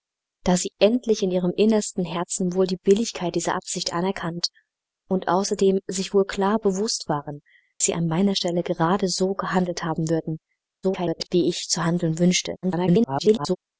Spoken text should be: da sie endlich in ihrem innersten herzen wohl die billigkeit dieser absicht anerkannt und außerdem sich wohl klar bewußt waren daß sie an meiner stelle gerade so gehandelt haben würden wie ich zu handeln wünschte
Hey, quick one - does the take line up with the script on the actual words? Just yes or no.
no